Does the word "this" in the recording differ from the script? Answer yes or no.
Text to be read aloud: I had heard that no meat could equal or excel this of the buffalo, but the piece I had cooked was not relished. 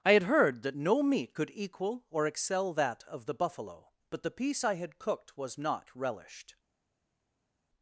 yes